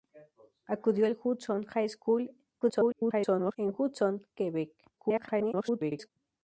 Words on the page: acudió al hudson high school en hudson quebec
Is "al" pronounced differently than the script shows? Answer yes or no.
no